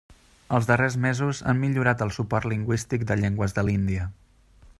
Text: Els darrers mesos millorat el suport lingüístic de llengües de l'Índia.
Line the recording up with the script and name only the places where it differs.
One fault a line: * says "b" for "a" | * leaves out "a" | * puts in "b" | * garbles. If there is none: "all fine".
* puts in "han"